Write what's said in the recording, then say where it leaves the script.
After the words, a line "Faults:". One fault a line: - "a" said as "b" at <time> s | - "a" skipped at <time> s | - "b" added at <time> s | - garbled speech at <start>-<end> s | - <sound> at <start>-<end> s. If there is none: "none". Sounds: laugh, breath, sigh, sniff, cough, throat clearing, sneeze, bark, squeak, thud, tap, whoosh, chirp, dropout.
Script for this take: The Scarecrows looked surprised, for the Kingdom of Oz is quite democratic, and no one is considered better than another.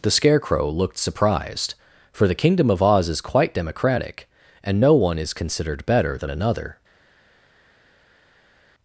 The Scarecrow looked surprised, for the Kingdom of Oz is quite democratic, and no one is considered better than another.
Faults:
- "Scarecrows" said as "Scarecrow" at 0.1 s